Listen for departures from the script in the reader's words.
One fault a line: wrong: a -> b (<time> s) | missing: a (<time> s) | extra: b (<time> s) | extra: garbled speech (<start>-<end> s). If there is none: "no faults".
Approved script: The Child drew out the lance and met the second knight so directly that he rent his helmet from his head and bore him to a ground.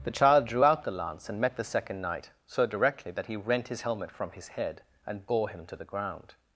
wrong: a -> the (5.7 s)